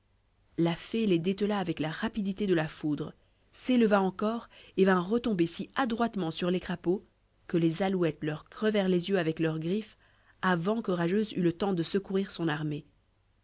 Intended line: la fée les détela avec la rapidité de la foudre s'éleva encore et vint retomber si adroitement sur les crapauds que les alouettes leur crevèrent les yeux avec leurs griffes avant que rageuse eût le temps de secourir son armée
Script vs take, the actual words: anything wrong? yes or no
no